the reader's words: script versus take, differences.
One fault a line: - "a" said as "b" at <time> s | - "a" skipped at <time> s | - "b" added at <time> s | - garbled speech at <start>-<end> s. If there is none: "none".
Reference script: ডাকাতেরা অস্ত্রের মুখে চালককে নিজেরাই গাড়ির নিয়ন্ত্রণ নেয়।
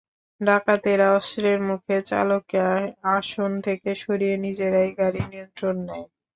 - "আসন থেকে সরিয়ে" added at 3.1 s